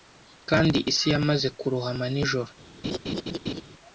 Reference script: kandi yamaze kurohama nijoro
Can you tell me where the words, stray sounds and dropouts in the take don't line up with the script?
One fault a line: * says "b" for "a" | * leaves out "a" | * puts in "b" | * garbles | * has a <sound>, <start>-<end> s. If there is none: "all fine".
* puts in "isi"
* has a laugh, 2.8-3.6 s